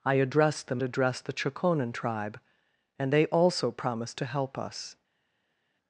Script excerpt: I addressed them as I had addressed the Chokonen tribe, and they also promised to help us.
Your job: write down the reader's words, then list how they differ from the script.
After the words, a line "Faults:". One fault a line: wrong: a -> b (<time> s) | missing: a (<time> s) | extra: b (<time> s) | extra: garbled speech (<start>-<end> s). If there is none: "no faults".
I addressed them addressed the Chokonen tribe, and they also promised to help us.
Faults:
missing: as I had (0.8 s)